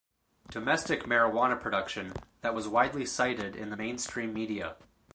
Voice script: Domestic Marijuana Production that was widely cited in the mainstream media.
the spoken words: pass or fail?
pass